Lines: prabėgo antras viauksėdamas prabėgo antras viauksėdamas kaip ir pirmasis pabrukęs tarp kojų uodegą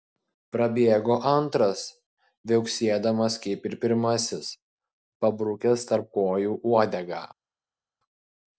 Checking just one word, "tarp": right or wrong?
right